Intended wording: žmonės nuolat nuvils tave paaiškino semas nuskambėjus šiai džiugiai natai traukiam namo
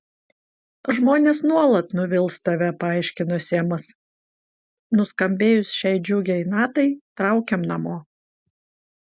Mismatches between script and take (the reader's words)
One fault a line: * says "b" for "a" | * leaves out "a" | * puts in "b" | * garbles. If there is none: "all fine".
all fine